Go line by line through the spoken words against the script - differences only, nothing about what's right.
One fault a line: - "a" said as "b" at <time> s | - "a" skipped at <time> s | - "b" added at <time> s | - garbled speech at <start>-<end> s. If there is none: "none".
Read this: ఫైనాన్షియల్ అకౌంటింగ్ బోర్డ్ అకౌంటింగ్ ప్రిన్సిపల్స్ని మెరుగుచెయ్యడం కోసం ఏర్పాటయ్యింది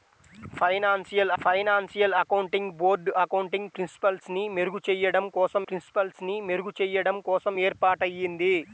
- "ఫైనాన్షియల్" added at 1.4 s
- "ప్రిన్సిపల్స్ని మెరుగుచెయ్యడం కోసం" added at 5.6 s